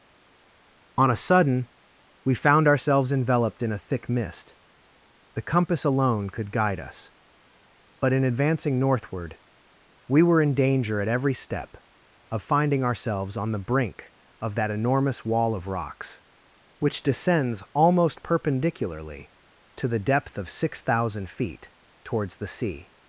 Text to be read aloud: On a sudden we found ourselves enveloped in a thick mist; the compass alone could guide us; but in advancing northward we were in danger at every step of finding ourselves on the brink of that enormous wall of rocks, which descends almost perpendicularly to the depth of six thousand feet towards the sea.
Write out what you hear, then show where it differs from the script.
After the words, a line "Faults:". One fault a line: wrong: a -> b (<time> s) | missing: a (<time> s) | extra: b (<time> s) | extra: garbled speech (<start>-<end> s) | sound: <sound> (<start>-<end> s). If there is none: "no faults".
On a sudden we found ourselves enveloped in a thick mist; the compass alone could guide us; but in advancing northward we were in danger at every step of finding ourselves on the brink of that enormous wall of rocks, which descends almost perpendicularly to the depth of six thousand feet towards the sea.
Faults:
no faults